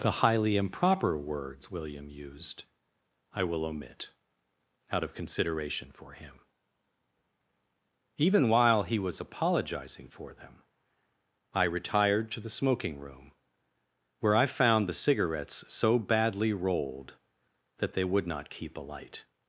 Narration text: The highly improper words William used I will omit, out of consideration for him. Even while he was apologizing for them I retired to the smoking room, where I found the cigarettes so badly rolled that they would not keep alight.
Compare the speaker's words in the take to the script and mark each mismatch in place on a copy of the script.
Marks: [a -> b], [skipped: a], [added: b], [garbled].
The highly improper words William used I will omit, out of consideration for him. Even while he was apologizing for them I retired to the smoking room, where I found the cigarettes so badly rolled that they would not keep alight.